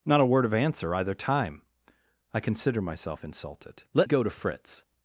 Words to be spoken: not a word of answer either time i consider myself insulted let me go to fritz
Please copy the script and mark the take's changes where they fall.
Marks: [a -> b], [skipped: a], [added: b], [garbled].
not a word of answer either time i consider myself insulted let [skipped: me] go to fritz